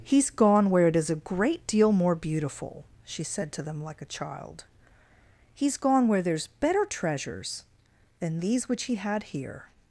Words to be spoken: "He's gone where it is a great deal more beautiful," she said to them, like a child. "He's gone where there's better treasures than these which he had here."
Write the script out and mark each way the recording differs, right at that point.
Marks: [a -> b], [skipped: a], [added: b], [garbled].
"He's gone where it is a great deal more beautiful," she said to them, like a child. "He's gone where there's better treasures than these which he had here."